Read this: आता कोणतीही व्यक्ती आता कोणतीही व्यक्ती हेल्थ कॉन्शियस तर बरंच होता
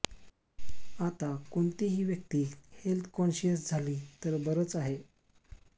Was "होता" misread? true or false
true